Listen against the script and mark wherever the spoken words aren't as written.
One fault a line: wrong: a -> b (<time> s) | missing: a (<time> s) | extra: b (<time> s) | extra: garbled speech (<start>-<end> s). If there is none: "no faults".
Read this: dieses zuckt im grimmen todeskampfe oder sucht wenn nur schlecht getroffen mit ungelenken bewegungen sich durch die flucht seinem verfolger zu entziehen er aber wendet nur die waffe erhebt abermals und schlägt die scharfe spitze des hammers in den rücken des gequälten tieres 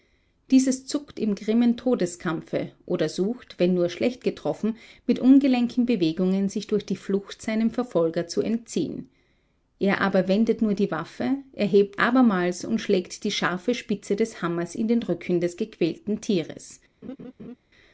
no faults